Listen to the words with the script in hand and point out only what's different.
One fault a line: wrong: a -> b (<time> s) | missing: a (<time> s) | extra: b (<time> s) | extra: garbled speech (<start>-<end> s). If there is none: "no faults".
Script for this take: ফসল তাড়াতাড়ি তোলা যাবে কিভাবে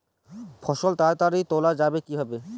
no faults